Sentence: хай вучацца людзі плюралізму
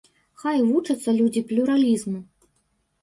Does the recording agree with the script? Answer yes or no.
yes